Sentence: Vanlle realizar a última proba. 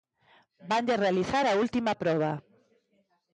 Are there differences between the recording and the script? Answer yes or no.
no